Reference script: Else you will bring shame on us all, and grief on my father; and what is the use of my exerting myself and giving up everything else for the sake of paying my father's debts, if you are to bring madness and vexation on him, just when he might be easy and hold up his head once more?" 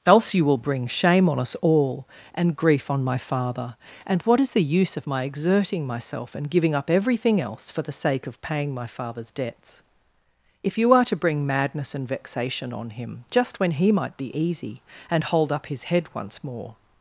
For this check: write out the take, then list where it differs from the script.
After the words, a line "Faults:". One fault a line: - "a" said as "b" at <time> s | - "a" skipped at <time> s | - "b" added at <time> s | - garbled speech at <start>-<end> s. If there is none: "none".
Else you will bring shame on us all, and grief on my father; and what is the use of my exerting myself and giving up everything else for the sake of paying my father's debts, if you are to bring madness and vexation on him, just when he might be easy and hold up his head once more?"
Faults:
none